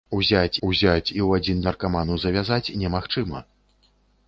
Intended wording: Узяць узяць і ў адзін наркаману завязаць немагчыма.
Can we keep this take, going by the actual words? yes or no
yes